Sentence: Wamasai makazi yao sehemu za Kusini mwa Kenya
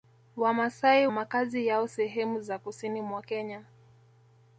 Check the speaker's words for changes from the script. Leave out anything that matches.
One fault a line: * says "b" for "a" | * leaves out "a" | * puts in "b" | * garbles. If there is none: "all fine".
all fine